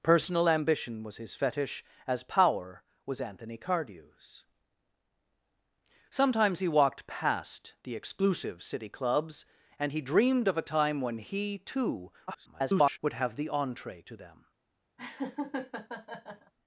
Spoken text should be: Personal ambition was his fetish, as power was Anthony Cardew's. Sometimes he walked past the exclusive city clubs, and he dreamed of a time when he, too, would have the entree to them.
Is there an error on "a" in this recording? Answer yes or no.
no